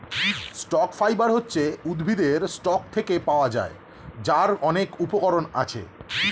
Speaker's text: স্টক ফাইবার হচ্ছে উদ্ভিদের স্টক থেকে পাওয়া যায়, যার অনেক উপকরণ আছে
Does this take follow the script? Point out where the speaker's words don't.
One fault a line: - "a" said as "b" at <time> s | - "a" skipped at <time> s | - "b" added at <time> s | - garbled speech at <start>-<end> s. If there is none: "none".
none